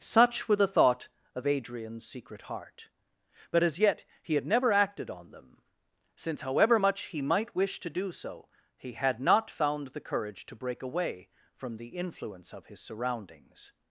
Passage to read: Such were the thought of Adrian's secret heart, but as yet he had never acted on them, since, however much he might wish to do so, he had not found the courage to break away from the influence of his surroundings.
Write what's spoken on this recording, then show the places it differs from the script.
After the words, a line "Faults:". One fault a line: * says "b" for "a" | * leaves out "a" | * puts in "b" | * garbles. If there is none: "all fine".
Such were the thought of Adrian's secret heart, but as yet he had never acted on them, since, however much he might wish to do so, he had not found the courage to break away from the influence of his surroundings.
Faults:
all fine